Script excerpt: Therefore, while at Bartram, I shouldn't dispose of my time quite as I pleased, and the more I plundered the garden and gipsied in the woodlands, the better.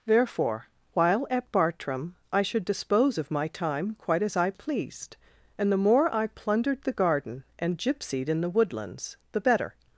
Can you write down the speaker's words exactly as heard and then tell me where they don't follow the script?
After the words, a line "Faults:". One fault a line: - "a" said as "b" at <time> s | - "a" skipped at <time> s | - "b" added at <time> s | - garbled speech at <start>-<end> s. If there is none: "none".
Therefore, while at Bartram, I should dispose of my time quite as I pleased, and the more I plundered the garden and gipsied in the woodlands, the better.
Faults:
- "shouldn't" said as "should" at 2.4 s